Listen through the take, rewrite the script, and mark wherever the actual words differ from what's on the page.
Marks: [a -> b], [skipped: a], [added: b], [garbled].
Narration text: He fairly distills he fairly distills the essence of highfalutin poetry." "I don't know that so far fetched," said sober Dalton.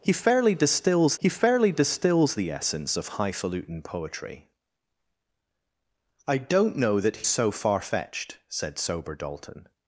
He fairly distills he fairly distills the essence of highfalutin poetry." "I don't know that so far fetched," said sober Dalton.